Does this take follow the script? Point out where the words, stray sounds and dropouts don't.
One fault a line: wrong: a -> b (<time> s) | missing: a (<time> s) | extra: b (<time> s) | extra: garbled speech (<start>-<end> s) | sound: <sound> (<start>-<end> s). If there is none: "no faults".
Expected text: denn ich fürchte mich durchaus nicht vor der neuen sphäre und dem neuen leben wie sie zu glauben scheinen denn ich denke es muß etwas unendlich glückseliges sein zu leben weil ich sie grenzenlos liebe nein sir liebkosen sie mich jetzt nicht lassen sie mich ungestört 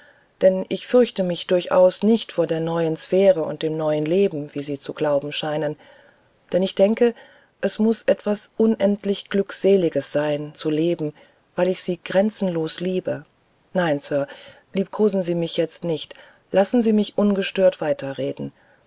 no faults